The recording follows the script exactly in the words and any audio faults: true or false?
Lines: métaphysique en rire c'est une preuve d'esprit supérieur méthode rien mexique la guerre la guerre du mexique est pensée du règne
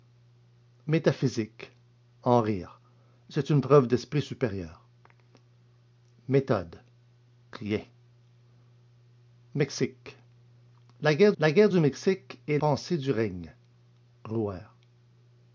true